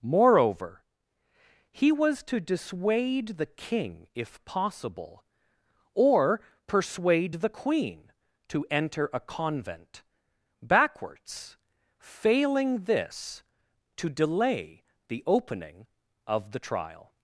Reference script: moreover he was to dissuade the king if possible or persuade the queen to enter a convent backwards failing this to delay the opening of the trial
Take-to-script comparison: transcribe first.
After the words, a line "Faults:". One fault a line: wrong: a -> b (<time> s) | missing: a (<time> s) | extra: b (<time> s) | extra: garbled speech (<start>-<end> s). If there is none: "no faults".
moreover he was to dissuade the king if possible or persuade the queen to enter a convent backwards failing this to delay the opening of the trial
Faults:
no faults